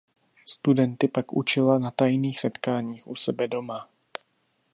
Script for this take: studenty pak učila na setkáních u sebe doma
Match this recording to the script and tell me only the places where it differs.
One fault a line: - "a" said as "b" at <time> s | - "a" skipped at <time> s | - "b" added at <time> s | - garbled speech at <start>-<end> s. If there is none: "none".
- "tajných" added at 1.9 s